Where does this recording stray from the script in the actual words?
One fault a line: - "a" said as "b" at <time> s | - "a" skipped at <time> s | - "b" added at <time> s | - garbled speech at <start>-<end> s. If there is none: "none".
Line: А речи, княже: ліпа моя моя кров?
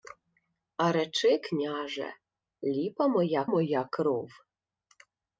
none